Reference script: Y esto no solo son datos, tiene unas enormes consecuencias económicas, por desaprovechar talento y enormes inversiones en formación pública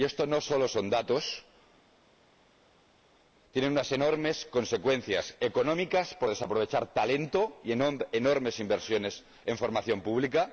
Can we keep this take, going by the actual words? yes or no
yes